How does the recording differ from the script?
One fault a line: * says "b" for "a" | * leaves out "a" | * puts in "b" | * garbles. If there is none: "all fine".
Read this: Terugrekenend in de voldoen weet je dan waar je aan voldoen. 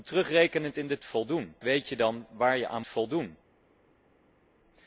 all fine